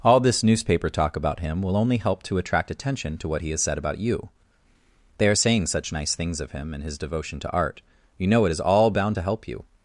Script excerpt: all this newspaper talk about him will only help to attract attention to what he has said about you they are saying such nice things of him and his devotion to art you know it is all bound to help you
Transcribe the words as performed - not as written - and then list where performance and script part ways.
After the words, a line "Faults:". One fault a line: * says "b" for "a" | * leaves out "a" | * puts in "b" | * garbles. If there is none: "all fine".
all this newspaper talk about him will only help to attract attention to what he has said about you they are saying such nice things of him and his devotion to art you know it is all bound to help you
Faults:
all fine